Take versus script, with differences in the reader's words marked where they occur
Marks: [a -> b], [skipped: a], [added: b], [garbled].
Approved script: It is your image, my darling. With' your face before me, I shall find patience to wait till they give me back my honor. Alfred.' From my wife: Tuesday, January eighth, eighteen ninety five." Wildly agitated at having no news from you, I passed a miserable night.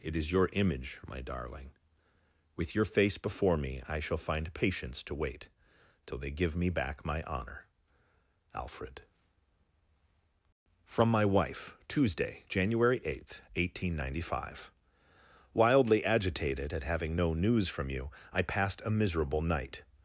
It is your image, my darling. With' your face before me, I shall find patience to wait till they give me back my honor. Alfred.' From my wife: Tuesday, January eighth, eighteen ninety five." Wildly agitated at having no news from you, I passed a miserable night.